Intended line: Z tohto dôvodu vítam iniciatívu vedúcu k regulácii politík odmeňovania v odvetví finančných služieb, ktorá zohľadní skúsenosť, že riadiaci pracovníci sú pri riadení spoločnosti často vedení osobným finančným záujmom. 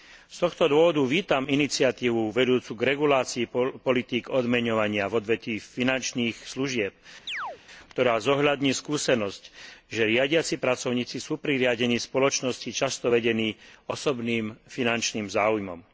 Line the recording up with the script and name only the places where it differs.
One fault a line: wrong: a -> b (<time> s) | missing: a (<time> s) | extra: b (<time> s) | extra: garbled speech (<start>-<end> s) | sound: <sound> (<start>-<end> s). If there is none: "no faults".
sound: chirp (7.3-7.6 s)